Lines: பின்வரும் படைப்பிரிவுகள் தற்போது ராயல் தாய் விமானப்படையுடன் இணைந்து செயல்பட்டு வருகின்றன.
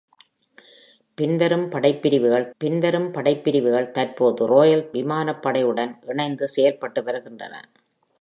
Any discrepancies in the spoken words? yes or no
yes